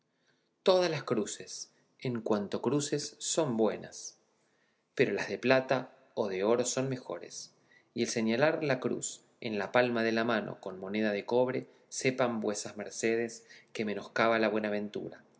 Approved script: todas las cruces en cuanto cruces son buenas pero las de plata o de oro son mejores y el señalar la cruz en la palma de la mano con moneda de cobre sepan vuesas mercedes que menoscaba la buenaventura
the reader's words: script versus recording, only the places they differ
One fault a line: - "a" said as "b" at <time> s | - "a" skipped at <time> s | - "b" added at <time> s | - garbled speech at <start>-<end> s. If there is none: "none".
none